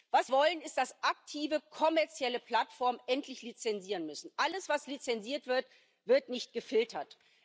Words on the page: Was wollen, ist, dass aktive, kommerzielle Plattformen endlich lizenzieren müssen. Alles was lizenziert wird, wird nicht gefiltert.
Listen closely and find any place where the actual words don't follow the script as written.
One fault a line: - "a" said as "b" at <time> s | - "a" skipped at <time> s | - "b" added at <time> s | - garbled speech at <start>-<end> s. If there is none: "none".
none